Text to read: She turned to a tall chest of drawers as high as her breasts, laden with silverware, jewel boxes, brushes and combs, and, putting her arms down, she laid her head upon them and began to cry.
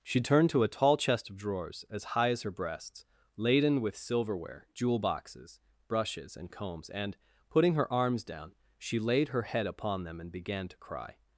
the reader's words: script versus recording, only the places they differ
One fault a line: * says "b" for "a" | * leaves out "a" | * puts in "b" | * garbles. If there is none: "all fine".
all fine